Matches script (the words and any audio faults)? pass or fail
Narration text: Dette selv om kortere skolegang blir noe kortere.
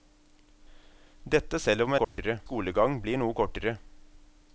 fail